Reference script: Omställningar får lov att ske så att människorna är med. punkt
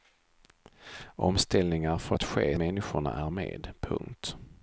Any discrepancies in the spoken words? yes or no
yes